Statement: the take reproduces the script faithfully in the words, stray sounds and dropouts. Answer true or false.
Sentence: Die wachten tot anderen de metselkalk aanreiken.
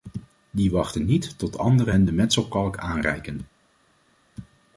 false